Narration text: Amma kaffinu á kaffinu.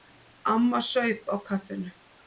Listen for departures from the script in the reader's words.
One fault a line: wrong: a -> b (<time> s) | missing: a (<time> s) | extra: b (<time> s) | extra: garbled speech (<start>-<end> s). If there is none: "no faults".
wrong: kaffinu -> saup (0.9 s)